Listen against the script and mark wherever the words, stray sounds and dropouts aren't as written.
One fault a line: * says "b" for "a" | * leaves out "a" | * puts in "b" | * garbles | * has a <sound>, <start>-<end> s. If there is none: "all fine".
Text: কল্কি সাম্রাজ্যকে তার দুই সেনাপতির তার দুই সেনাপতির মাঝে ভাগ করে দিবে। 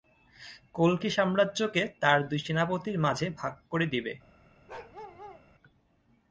* leaves out "তার দুই সেনাপতির"
* has a bark, 4.7-5.4 s